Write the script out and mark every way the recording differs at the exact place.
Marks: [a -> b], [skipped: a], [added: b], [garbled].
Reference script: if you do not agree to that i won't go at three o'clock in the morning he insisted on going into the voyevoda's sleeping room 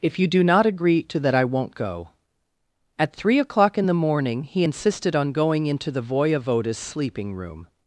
if you do not agree to that i won't go at three o'clock in the morning he insisted on going into the voyevoda's sleeping room